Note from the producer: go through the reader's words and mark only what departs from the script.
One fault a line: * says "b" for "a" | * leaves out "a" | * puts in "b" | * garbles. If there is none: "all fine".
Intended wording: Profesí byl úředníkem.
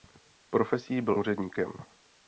all fine